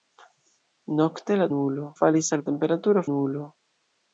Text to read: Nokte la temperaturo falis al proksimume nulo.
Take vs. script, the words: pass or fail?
fail